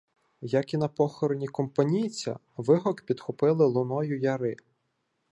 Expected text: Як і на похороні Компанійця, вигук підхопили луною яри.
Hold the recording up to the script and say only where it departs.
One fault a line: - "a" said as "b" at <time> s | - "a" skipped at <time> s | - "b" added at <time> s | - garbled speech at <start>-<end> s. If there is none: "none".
none